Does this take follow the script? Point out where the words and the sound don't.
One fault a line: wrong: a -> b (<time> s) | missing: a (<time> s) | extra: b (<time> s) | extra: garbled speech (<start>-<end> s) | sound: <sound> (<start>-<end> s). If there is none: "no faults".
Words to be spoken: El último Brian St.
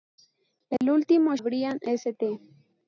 sound: dropout (0.8-0.8 s)